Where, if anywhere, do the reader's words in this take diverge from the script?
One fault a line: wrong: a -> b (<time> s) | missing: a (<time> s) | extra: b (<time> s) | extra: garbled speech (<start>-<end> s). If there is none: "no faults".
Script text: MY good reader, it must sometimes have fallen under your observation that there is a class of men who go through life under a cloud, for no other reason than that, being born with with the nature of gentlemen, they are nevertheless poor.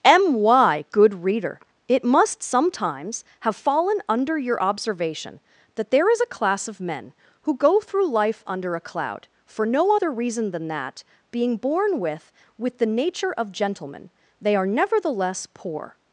no faults